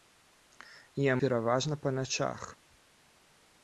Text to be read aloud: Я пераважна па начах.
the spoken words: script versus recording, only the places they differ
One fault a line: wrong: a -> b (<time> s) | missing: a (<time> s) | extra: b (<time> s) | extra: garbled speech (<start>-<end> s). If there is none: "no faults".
no faults